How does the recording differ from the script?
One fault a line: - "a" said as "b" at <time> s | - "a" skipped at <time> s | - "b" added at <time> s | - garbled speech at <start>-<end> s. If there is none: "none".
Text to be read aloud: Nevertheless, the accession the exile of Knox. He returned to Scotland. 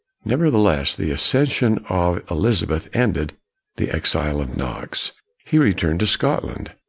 - "of Elizabeth ended" added at 1.9 s